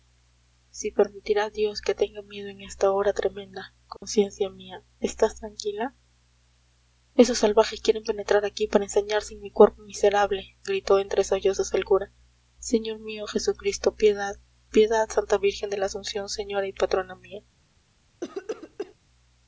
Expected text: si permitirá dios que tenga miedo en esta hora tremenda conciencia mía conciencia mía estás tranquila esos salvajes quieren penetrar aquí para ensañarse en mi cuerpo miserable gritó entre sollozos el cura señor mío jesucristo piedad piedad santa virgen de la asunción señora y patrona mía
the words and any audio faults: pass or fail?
fail